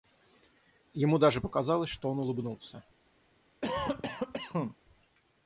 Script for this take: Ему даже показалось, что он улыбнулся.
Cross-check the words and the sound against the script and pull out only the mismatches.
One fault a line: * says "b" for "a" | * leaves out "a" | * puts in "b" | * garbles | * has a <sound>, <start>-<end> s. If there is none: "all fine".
* has a cough, 3.6-4.8 s